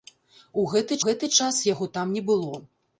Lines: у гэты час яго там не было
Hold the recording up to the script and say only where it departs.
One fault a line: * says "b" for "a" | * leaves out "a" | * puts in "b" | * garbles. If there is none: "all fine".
* puts in "гэты"